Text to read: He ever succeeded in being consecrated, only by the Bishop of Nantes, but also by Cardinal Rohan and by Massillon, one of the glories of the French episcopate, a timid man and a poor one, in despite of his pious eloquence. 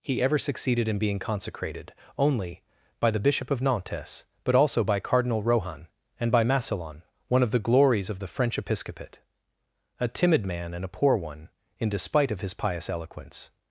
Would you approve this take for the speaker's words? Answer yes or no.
yes